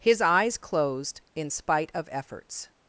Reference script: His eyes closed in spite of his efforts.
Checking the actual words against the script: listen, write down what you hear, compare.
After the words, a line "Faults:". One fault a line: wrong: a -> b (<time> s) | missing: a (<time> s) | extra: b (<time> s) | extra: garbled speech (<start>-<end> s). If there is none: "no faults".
His eyes closed in spite of efforts.
Faults:
missing: his (2.1 s)